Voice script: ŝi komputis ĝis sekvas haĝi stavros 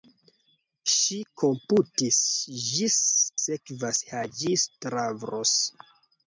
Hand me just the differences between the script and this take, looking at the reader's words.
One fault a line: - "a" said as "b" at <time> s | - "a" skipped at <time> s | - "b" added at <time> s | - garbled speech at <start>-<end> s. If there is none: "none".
none